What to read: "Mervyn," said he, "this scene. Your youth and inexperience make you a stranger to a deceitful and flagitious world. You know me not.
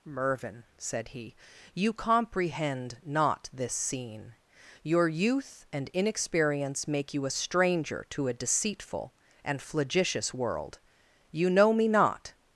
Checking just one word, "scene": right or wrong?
right